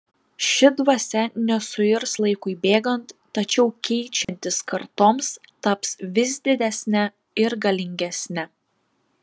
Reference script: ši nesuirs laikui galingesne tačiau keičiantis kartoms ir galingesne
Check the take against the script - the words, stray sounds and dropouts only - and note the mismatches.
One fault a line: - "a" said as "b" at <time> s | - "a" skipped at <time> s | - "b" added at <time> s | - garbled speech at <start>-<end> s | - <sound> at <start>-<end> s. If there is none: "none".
- "dvasia" added at 0.8 s
- "galingesne" said as "bėgant" at 2.7 s
- dropout at 4.2-4.3 s
- "taps vis didesne" added at 5.7 s